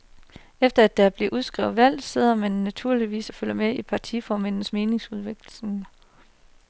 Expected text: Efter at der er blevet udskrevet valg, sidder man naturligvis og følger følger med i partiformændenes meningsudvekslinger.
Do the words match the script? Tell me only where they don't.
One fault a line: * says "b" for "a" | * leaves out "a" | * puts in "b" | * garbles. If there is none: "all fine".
* leaves out "følger"